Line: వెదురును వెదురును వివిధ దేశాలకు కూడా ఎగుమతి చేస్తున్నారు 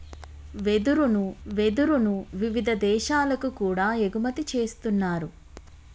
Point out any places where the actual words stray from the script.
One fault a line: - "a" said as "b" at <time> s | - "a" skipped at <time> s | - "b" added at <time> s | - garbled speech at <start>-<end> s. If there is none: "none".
none